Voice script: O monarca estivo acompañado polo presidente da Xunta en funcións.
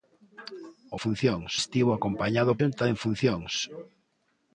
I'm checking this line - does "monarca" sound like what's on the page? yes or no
no